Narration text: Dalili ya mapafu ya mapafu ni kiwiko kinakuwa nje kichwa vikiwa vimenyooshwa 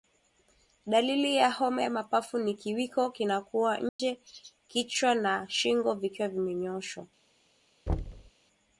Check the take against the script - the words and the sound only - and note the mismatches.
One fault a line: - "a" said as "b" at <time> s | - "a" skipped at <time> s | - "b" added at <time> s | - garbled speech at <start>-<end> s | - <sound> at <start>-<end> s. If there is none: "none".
- "mapafu" said as "homa" at 1.5 s
- dropout at 3.9-4.0 s
- "na shingo" added at 5.1 s
- thud at 7.9-8.3 s